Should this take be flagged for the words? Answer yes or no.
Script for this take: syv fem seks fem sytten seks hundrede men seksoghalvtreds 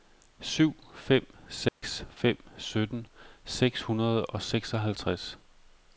yes